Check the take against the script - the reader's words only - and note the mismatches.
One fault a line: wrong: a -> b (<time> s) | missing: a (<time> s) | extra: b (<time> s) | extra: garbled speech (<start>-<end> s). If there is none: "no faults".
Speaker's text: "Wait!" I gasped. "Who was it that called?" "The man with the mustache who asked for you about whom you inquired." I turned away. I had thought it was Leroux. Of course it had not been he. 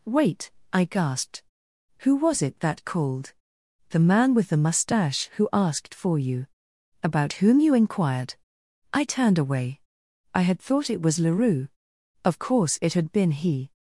missing: not (13.1 s)